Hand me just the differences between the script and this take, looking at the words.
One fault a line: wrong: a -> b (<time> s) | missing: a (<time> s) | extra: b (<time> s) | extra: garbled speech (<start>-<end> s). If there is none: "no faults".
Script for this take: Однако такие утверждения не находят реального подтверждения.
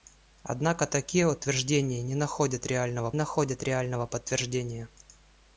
extra: находят реального (3.1 s)